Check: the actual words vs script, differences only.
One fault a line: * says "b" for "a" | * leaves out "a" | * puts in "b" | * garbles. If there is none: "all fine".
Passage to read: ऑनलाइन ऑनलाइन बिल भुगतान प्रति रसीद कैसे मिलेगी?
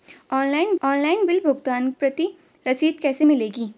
all fine